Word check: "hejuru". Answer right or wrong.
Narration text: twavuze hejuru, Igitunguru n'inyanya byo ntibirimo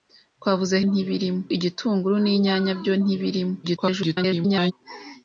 wrong